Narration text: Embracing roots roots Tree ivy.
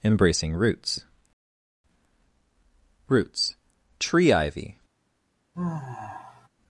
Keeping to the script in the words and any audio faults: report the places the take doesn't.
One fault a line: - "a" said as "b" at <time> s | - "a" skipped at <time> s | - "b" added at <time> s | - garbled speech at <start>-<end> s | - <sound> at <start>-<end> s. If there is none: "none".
- sigh at 5.5-6.5 s